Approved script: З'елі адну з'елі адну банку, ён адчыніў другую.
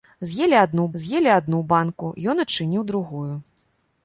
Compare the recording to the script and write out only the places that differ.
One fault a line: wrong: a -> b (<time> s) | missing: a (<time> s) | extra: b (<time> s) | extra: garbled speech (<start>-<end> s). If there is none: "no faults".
no faults